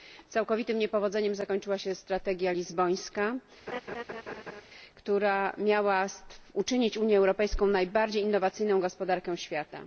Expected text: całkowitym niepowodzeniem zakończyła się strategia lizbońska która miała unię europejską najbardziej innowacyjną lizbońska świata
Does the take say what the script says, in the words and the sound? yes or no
no